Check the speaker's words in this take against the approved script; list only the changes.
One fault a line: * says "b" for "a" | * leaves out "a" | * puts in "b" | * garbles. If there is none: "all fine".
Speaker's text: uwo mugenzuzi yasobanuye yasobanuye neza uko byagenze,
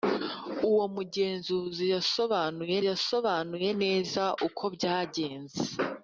all fine